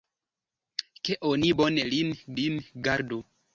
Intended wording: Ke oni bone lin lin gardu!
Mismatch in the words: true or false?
false